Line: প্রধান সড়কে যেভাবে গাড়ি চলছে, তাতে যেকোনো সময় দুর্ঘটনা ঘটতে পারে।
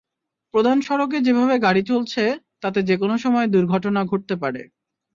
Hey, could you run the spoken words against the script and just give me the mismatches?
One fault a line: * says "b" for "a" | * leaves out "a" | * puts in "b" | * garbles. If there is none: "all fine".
all fine